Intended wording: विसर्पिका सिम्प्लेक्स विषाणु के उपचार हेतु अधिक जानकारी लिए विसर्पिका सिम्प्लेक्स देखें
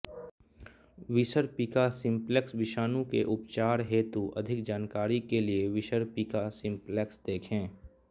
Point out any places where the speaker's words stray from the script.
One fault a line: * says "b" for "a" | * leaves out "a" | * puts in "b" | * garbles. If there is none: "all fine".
* puts in "के"